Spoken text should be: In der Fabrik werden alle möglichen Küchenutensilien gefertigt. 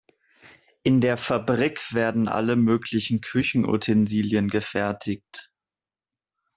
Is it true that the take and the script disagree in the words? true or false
false